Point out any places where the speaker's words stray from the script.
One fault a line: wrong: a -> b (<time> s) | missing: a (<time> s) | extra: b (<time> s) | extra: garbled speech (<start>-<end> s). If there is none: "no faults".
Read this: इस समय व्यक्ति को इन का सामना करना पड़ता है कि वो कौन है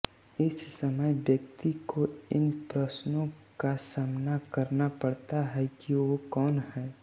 extra: प्रश्नों (2.7 s)